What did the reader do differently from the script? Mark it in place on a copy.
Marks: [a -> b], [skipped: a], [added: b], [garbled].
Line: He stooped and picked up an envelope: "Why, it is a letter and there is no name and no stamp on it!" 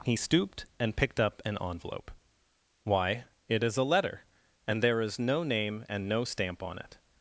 He stooped and picked up an envelope: "Why, it is a letter and there is no name and no stamp on it!"